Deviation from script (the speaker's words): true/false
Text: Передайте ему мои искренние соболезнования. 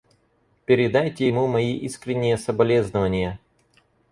false